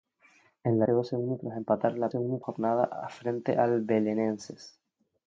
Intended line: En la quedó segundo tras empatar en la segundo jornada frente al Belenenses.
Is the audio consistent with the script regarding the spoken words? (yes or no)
yes